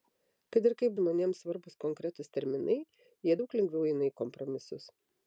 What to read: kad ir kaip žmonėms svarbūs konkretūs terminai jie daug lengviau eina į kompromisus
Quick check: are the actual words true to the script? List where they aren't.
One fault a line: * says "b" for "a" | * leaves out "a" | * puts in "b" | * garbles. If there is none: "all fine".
all fine